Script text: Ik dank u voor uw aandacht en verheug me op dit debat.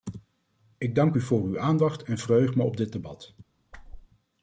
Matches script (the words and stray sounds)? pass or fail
fail